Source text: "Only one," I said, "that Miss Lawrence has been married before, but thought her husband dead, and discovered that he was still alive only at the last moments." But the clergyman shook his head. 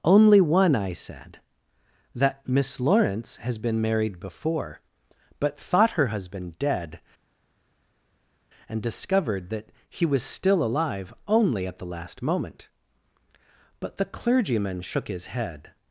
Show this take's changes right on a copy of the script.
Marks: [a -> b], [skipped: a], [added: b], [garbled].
"Only one," I said, "that Miss Lawrence has been married before, but thought her husband dead, and discovered that he was still alive only at the last [moments." -> moment] But the clergyman shook his head.